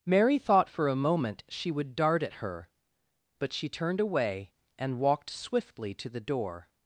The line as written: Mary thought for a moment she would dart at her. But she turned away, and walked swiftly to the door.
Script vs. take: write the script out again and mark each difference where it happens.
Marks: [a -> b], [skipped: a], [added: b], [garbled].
Mary thought for a moment she would dart at her. But she turned away, and walked swiftly to the door.